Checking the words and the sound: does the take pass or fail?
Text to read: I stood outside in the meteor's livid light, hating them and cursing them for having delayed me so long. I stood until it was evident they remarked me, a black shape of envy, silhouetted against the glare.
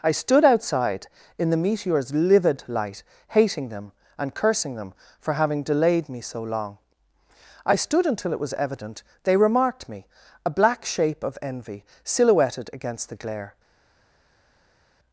pass